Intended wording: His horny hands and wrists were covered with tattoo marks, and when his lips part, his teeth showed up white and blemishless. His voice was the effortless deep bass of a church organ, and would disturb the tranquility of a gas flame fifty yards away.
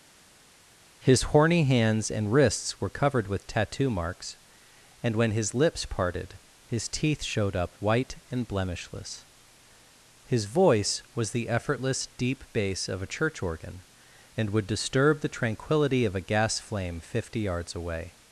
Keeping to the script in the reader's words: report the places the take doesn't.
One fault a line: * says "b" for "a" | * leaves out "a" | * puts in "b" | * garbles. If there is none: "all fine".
* says "parted" for "part"